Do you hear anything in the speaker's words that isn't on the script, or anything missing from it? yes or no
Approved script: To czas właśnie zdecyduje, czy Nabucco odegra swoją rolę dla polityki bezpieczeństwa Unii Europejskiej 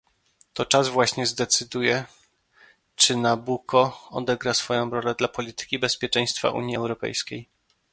no